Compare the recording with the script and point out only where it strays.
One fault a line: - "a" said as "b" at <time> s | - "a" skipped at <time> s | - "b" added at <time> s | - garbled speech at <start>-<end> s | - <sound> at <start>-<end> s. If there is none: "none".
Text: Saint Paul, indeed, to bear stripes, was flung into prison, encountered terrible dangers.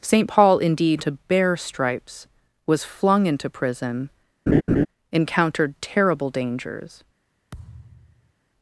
- laugh at 4.5-4.9 s
- thud at 7.5-8.3 s